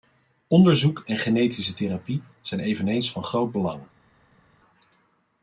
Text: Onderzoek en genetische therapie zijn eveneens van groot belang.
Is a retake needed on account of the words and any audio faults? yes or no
no